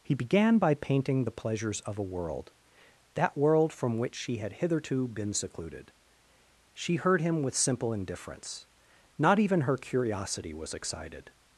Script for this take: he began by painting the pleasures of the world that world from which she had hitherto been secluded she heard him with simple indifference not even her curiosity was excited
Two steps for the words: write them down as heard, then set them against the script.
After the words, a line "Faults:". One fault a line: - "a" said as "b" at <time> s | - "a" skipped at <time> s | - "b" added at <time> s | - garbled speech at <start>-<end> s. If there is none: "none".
he began by painting the pleasures of a world that world from which she had hitherto been secluded she heard him with simple indifference not even her curiosity was excited
Faults:
- "the" said as "a" at 2.0 s